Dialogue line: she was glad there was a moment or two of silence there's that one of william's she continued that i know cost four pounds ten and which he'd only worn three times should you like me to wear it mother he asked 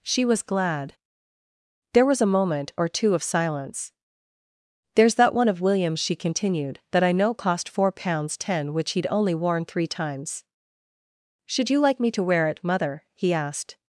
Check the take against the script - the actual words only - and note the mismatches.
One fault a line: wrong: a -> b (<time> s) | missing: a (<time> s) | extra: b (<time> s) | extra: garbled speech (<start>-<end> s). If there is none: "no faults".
missing: and (8.7 s)